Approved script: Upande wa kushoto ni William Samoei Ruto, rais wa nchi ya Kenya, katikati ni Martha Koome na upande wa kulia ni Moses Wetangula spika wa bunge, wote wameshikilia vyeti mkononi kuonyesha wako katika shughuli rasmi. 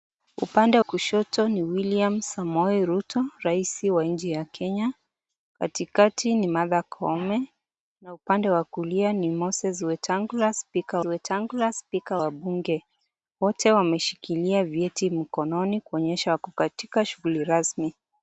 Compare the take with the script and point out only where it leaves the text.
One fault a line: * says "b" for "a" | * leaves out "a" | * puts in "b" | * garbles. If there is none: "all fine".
* leaves out "wa"
* puts in "Wetangula spika"